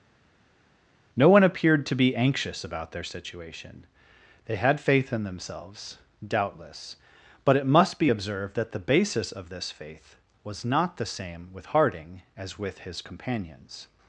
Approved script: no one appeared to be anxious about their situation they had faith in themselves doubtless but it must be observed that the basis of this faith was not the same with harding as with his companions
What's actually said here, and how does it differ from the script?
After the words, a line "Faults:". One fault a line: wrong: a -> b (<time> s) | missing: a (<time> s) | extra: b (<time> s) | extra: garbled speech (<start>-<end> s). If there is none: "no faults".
no one appeared to be anxious about their situation they had faith in themselves doubtless but it must be observed that the basis of this faith was not the same with harding as with his companions
Faults:
no faults